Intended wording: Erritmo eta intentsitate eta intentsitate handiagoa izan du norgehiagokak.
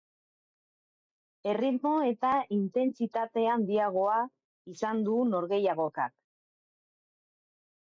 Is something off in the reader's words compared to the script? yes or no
yes